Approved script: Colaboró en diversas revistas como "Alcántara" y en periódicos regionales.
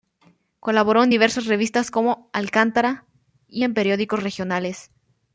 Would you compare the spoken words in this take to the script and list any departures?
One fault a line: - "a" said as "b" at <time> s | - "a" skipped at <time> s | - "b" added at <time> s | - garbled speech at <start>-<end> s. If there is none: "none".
none